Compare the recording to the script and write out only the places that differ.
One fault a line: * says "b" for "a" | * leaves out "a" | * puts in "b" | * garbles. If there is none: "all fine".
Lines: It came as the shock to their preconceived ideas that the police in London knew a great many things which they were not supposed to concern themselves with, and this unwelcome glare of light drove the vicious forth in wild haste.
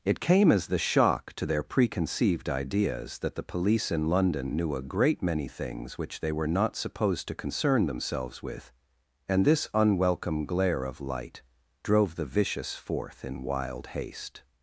all fine